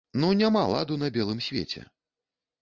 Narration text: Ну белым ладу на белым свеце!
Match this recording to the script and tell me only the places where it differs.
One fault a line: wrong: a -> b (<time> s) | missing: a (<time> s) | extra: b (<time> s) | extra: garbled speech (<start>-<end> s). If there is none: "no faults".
wrong: белым -> няма (0.4 s)